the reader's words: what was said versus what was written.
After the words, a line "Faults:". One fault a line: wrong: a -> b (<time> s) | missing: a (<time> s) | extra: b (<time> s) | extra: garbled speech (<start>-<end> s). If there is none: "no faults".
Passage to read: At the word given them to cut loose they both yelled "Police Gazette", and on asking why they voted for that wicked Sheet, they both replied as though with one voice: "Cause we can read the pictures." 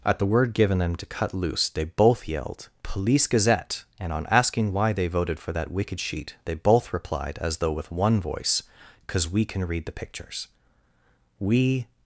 At the word given them to cut loose they both yelled "Police Gazette", and on asking why they voted for that wicked Sheet, they both replied as though with one voice: "Cause we can read the pictures." We
Faults:
extra: We (11.4 s)